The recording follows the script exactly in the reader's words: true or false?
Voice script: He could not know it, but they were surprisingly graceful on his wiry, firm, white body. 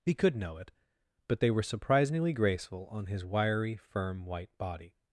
false